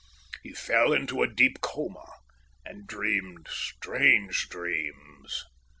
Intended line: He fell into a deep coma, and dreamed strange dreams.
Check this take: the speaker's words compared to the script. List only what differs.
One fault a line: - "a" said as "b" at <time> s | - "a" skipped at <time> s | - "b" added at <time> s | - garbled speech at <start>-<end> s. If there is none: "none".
none